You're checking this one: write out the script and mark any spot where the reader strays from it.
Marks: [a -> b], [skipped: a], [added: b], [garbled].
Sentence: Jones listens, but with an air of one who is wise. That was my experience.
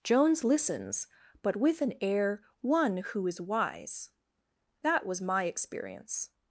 Jones listens, but with an air [skipped: of] one who is wise. That was my experience.